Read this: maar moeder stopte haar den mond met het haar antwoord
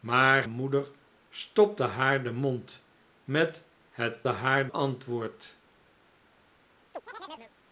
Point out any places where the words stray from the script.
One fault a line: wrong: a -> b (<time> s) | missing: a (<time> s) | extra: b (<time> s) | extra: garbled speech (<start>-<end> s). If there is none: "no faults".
no faults